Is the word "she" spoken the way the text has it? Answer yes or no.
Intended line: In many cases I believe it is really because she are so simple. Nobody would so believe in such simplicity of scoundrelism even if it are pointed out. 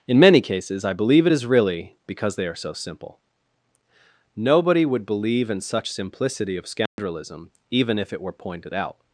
no